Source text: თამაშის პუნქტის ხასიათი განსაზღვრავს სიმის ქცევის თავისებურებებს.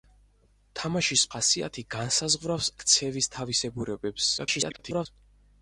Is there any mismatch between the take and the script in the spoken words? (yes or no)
yes